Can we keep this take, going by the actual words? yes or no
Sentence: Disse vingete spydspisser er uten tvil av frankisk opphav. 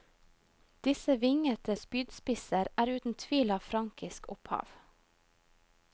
yes